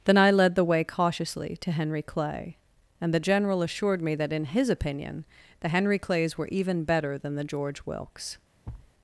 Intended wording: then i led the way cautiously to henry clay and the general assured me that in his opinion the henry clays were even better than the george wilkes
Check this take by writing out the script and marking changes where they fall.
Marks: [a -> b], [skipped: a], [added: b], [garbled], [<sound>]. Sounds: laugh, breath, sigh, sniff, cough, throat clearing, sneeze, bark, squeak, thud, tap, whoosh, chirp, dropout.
then i led the way cautiously to henry clay and the general assured me that in his opinion the henry clays were even better than the george wilkes [thud]